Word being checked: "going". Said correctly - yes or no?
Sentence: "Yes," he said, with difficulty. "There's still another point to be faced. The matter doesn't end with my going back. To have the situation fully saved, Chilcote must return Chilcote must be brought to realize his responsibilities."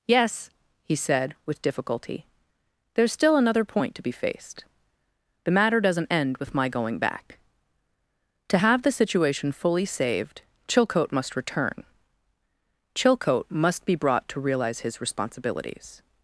yes